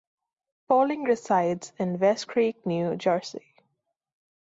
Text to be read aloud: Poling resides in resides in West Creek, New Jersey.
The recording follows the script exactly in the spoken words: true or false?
false